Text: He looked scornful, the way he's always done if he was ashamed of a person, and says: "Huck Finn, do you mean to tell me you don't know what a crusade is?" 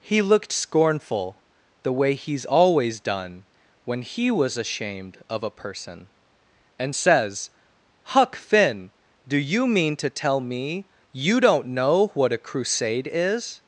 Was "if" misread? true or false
true